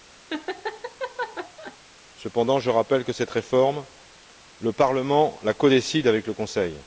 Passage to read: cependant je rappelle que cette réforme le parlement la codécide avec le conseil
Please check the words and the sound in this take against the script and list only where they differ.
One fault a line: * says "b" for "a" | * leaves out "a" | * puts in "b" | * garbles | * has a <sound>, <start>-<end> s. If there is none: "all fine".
* has a laugh, 0.3-1.8 s